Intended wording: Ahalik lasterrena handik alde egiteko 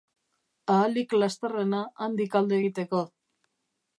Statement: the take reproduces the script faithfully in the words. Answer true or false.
true